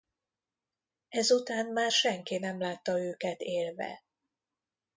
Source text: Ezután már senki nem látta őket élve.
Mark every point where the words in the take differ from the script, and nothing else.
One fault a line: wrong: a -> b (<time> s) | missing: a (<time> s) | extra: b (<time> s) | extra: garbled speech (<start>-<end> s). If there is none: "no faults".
no faults